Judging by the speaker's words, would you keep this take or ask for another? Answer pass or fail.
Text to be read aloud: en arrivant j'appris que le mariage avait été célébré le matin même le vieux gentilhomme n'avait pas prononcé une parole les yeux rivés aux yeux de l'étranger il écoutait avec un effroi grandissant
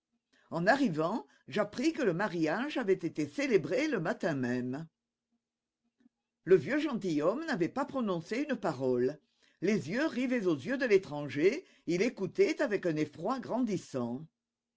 pass